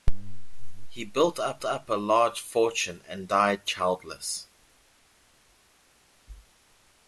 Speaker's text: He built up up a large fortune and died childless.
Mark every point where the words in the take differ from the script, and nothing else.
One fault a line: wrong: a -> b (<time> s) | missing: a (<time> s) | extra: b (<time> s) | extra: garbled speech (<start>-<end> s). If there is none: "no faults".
no faults